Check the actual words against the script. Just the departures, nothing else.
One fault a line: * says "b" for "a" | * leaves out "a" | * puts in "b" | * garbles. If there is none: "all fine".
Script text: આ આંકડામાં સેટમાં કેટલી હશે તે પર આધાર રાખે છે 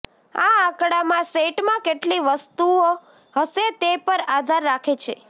* puts in "વસ્તુઓ"